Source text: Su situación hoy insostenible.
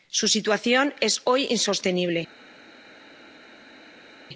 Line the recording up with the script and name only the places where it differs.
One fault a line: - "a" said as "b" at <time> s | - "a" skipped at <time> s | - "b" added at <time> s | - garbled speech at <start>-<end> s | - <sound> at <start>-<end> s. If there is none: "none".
- "es" added at 1.0 s